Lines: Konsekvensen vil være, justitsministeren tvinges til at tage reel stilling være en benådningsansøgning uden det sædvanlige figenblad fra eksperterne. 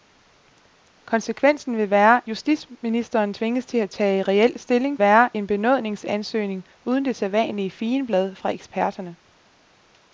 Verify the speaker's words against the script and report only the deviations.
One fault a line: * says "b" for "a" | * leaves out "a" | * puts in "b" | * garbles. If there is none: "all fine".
all fine